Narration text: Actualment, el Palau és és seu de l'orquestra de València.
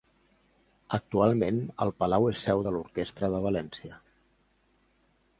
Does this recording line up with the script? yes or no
no